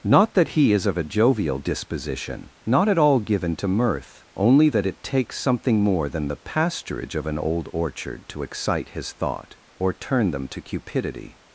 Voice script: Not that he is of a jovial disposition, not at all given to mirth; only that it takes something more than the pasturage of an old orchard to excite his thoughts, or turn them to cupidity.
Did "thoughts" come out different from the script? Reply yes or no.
yes